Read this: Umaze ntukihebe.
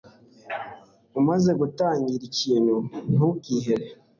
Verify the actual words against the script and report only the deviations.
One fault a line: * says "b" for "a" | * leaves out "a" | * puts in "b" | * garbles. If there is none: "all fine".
* puts in "gutangira ikintu"